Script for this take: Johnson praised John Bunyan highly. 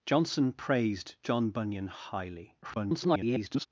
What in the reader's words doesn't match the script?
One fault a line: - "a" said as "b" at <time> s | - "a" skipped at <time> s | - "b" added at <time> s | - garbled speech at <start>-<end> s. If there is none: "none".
- garbled speech at 2.6-3.7 s